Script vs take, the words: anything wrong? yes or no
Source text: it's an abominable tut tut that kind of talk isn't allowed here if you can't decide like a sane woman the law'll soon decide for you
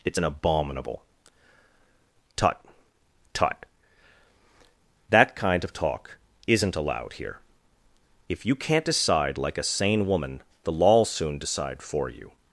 no